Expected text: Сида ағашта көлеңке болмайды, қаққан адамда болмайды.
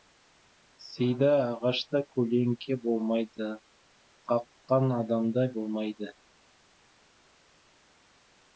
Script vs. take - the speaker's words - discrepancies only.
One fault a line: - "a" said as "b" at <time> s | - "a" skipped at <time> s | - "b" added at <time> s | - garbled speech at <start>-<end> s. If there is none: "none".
none